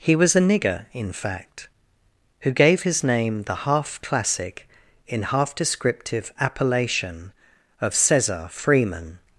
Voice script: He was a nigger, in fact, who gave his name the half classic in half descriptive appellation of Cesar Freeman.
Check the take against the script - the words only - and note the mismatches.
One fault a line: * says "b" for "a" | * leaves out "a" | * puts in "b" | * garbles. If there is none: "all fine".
all fine